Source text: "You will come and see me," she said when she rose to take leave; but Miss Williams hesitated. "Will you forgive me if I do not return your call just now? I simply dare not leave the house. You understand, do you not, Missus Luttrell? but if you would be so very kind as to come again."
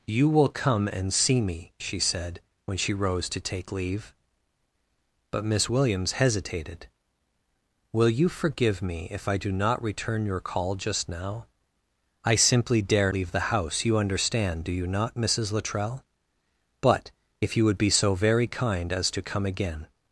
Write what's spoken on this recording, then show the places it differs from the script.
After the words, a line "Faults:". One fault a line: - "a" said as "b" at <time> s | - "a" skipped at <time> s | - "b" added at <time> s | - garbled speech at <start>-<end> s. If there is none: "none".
"You will come and see me," she said when she rose to take leave; but Miss Williams hesitated. "Will you forgive me if I do not return your call just now? I simply dare leave the house. You understand, do you not, Missus Luttrell? but if you would be so very kind as to come again."
Faults:
- "not" skipped at 13.1 s